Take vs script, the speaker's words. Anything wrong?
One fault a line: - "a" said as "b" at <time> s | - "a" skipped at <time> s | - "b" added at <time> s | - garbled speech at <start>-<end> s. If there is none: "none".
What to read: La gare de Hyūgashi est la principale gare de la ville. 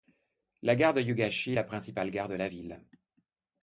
none